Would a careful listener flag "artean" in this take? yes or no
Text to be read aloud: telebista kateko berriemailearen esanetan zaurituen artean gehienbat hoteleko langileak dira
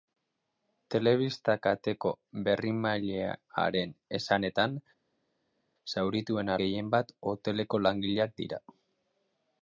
yes